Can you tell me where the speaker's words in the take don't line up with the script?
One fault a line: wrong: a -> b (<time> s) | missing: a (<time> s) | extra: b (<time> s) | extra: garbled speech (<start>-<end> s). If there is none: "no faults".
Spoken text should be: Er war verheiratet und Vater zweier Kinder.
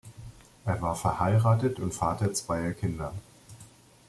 no faults